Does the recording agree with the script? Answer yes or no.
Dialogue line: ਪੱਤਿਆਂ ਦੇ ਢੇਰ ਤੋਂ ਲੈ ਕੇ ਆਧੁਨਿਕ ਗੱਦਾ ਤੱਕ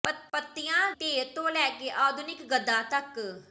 no